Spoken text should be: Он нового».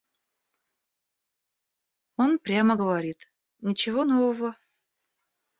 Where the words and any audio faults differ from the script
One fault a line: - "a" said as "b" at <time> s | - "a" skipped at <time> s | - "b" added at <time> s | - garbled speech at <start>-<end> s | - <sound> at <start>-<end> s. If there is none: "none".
- "прямо говорит Ничего" added at 2.4 s